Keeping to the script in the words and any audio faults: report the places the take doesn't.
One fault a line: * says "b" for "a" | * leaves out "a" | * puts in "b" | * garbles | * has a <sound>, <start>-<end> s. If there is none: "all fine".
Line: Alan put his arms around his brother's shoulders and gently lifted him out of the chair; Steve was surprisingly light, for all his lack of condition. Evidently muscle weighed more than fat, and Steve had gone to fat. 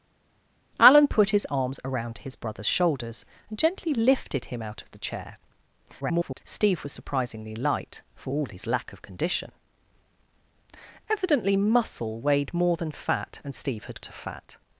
* garbles
* leaves out "gone"